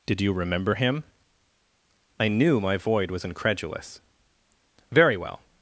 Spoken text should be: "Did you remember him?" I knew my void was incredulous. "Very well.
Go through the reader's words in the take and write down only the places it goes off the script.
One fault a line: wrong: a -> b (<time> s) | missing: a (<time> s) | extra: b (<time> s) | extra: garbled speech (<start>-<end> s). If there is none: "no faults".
no faults